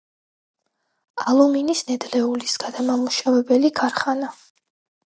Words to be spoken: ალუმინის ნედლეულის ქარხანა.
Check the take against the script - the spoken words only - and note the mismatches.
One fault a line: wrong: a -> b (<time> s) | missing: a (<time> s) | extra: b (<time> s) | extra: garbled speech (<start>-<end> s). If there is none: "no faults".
extra: გადამამუშავებელი (2.7 s)